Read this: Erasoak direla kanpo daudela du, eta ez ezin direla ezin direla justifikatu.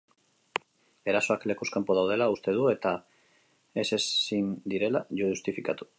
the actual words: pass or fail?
fail